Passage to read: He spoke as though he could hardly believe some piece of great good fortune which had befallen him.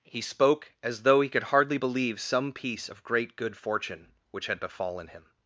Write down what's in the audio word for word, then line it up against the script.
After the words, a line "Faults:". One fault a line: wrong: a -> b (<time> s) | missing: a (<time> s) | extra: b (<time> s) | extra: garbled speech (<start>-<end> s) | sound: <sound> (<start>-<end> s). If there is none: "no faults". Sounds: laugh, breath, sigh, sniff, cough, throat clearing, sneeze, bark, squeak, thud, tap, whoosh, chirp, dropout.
He spoke as though he could hardly believe some piece of great good fortune which had befallen him.
Faults:
no faults